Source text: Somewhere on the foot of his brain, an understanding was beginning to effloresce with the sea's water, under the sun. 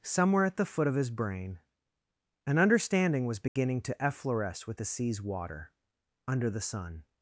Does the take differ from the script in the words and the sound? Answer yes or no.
yes